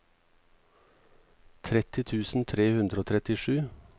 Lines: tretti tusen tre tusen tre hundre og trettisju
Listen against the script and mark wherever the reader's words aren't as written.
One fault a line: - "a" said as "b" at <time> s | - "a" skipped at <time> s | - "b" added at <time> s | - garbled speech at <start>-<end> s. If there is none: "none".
- "tusen tre" skipped at 2.7 s